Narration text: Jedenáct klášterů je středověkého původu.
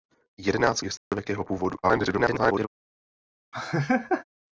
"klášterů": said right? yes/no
no